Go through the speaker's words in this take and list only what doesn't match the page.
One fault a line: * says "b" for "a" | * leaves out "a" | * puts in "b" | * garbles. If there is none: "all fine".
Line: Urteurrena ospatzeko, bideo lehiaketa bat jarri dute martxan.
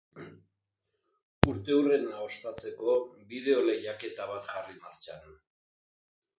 * leaves out "dute"